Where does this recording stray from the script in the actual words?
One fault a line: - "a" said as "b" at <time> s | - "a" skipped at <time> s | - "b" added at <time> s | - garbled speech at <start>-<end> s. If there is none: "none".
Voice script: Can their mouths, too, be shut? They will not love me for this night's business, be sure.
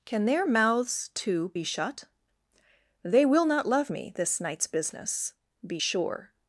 - "for" skipped at 4.1 s